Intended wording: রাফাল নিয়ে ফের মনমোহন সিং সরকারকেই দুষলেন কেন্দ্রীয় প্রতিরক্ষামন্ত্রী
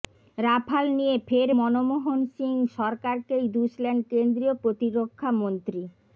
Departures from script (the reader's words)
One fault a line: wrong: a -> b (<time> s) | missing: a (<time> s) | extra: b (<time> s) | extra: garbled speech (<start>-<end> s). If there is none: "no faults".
no faults